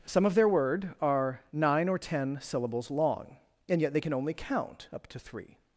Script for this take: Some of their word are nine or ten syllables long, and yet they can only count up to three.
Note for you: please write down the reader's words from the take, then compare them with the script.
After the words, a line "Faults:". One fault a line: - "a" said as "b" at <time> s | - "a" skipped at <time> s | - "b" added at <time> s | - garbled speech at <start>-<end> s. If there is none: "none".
Some of their word are nine or ten syllables long, and yet they can only count up to three.
Faults:
none